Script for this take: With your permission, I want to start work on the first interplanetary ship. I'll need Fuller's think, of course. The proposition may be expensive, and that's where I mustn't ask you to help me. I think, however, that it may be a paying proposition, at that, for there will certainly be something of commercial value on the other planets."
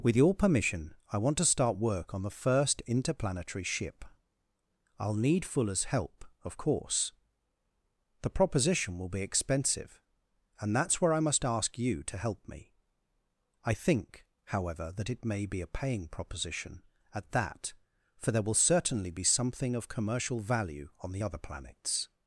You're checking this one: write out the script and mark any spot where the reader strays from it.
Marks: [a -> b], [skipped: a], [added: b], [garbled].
With your permission, I want to start work on the first interplanetary ship. I'll need Fuller's [think, -> help] of course. The proposition [may -> will] be expensive, and that's where I [mustn't -> must] ask you to help me. I think, however, that it may be a paying proposition, at that, for there will certainly be something of commercial value on the other planets."